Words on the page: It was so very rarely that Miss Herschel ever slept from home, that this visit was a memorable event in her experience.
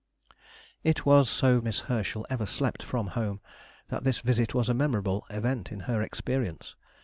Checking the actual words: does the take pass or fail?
fail